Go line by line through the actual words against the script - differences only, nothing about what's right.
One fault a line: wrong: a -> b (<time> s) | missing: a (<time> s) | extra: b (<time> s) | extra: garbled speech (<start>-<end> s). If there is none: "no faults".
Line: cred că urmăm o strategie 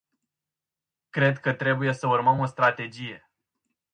extra: trebuie să (1.5 s)